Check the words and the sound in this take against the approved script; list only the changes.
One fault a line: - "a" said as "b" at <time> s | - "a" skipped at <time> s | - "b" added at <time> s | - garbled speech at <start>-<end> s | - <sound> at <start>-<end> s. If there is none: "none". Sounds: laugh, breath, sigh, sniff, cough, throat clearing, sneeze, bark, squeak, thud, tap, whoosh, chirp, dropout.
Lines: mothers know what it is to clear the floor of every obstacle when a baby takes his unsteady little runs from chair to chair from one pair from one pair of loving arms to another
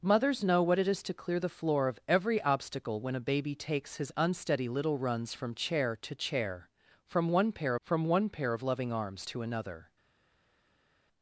none